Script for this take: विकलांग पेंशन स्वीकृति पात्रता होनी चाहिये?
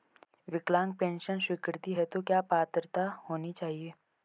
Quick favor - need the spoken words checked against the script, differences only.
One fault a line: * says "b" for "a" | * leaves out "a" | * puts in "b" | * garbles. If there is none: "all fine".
* puts in "हेतु क्या"